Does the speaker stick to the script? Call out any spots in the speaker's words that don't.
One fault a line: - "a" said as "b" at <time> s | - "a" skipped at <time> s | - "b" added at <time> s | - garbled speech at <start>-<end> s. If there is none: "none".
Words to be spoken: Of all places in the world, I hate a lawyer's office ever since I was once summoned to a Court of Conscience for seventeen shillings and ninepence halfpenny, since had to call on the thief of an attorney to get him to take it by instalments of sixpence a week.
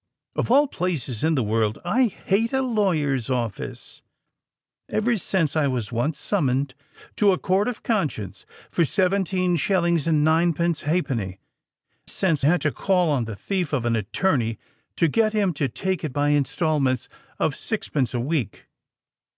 none